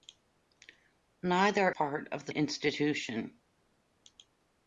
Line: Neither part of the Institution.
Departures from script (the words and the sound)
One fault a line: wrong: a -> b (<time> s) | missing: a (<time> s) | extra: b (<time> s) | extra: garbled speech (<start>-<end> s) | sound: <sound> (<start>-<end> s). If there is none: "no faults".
no faults